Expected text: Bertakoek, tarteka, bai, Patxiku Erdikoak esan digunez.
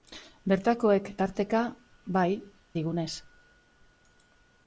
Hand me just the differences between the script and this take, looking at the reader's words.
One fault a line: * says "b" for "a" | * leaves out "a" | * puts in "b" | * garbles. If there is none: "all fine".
* leaves out "Patxiku Erdikoak esan"